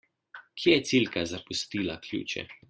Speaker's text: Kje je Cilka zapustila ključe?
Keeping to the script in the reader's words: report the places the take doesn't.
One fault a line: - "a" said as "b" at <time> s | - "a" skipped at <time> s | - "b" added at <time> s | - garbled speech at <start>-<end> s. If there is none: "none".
none